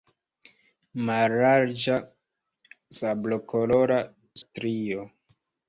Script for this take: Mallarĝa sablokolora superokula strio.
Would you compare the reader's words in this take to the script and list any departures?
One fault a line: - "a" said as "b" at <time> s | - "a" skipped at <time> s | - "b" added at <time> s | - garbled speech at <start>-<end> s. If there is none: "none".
- "superokula" skipped at 4.0 s